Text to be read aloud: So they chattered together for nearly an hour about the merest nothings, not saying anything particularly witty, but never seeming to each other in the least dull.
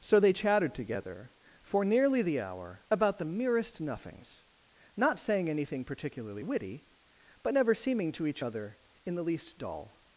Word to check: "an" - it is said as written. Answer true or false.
false